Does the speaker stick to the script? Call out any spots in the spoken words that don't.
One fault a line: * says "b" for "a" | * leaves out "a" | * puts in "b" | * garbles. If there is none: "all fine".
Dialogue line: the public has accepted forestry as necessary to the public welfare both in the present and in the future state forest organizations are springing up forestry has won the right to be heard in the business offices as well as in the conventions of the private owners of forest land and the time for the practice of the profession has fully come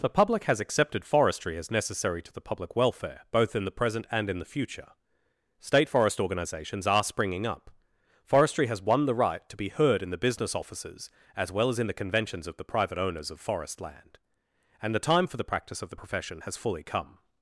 all fine